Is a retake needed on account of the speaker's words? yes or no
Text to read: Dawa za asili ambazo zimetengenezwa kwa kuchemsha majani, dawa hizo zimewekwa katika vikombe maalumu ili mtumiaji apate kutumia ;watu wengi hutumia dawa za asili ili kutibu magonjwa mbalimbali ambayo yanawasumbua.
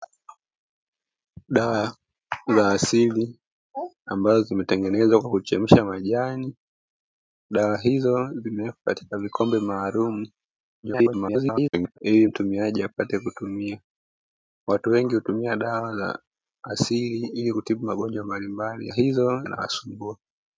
yes